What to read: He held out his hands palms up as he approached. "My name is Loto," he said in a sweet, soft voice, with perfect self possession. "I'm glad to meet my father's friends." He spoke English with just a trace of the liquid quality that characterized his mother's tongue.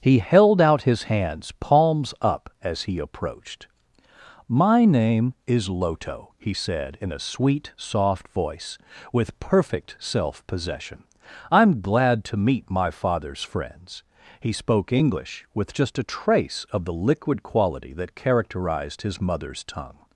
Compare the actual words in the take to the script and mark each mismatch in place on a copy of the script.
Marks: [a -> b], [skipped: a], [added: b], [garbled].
He held out his hands palms up as he approached. "My name is Loto," he said in a sweet, soft voice, with perfect self possession. "I'm glad to meet my father's friends." He spoke English with just a trace of the liquid quality that characterized his mother's tongue.